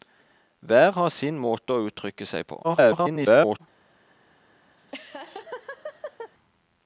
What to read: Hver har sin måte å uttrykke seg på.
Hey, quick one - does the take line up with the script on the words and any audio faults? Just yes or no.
no